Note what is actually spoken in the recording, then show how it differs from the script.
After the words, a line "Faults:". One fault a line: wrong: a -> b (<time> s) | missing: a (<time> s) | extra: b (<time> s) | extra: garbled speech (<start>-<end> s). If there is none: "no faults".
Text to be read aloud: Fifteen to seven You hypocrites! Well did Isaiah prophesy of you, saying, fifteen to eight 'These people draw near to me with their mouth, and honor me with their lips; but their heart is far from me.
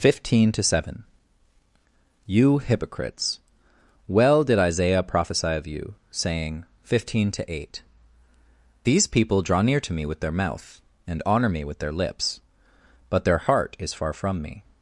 Fifteen to seven You hypocrites! Well did Isaiah prophesy of you, saying, fifteen to eight 'These people draw near to me with their mouth, and honor me with their lips; but their heart is far from me.
Faults:
no faults